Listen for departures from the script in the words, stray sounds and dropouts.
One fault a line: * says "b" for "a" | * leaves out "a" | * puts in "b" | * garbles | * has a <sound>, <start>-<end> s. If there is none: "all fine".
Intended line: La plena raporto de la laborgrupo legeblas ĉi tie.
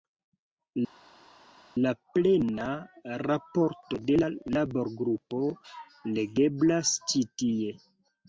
all fine